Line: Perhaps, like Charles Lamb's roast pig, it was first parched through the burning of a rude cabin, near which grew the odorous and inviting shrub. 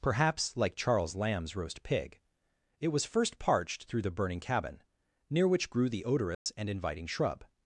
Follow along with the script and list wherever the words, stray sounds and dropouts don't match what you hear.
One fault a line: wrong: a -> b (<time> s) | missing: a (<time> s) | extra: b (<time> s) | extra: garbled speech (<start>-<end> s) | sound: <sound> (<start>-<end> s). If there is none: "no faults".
missing: of a rude (4.4 s)
sound: dropout (6.3-6.5 s)